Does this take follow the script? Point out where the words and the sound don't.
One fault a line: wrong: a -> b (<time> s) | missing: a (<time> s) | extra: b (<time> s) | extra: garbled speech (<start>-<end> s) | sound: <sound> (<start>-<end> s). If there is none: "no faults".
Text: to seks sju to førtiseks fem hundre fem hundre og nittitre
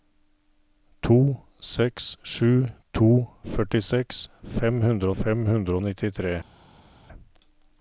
no faults